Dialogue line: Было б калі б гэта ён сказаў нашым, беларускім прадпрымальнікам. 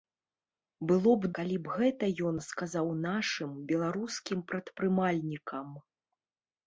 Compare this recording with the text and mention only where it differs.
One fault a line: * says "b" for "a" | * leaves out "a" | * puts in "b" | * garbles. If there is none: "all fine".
all fine